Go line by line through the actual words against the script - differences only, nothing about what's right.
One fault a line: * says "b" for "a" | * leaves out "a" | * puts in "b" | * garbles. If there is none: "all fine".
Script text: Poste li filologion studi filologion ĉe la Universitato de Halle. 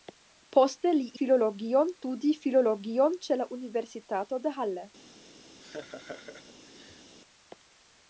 all fine